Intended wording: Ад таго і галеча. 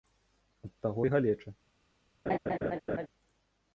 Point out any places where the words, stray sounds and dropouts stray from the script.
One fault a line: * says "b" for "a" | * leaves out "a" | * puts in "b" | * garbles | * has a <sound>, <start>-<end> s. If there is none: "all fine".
* has a laugh, 2.3-3.1 s